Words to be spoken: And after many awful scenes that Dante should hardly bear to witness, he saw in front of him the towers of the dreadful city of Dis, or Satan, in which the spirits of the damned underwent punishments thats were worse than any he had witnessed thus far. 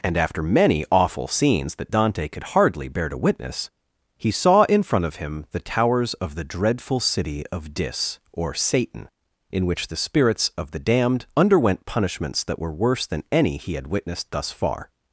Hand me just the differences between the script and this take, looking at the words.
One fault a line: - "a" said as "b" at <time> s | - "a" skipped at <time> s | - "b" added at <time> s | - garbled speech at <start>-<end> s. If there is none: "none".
- "should" said as "could" at 2.3 s
- "thats" said as "that" at 12.4 s